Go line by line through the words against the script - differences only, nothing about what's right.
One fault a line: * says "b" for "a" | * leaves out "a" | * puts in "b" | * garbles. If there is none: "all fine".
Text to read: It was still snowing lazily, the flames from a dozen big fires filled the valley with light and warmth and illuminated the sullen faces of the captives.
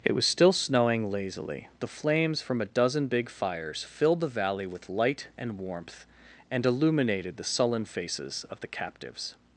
all fine